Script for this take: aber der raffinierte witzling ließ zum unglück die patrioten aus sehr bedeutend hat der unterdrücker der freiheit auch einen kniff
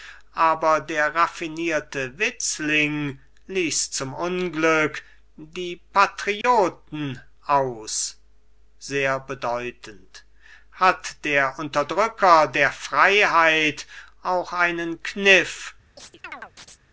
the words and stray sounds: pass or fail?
fail